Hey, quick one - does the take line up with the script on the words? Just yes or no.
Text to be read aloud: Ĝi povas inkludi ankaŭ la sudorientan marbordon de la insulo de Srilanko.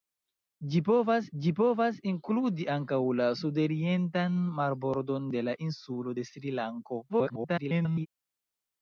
no